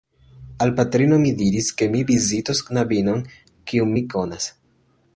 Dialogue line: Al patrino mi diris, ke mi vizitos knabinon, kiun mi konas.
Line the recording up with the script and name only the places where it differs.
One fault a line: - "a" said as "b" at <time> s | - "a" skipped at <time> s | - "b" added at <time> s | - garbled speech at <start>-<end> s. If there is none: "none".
none